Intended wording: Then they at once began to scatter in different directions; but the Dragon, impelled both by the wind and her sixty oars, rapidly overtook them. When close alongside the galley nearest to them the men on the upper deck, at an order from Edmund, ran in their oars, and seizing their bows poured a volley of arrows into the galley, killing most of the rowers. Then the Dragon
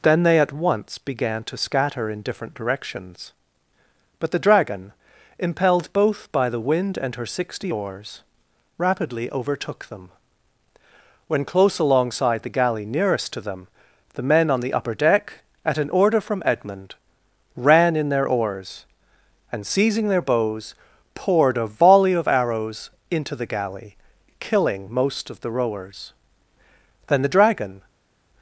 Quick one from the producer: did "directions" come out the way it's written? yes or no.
yes